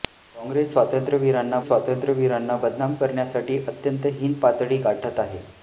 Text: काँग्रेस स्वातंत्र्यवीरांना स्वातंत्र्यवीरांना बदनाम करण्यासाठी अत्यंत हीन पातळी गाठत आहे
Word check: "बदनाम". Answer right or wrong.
right